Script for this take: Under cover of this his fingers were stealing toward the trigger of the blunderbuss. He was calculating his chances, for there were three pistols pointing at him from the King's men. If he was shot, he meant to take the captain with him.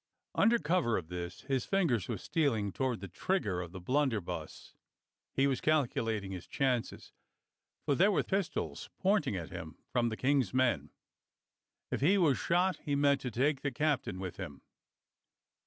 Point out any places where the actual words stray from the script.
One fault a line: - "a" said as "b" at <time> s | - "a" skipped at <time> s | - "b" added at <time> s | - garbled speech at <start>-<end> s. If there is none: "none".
- "three" skipped at 8.2 s